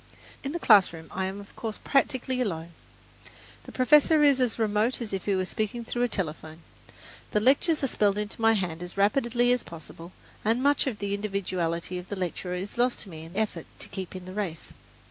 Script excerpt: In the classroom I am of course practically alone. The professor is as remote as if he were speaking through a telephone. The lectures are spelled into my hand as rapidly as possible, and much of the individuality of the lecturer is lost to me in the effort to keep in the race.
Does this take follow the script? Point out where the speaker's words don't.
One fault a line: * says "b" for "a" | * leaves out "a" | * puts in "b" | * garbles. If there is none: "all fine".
* leaves out "the"